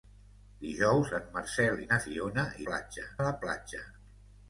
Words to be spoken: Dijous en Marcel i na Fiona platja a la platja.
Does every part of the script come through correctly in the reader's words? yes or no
yes